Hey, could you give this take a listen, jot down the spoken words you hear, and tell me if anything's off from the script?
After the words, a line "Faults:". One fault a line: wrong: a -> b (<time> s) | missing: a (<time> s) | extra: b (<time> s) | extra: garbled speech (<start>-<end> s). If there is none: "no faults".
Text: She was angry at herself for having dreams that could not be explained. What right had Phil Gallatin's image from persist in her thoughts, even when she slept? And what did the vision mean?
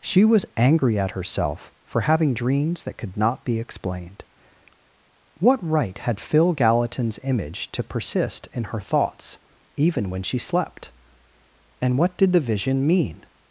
She was angry at herself for having dreams that could not be explained. What right had Phil Gallatin's image to persist in her thoughts, even when she slept? And what did the vision mean?
Faults:
wrong: from -> to (7.7 s)